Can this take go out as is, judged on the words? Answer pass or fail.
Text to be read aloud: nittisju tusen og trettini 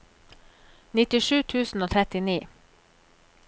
pass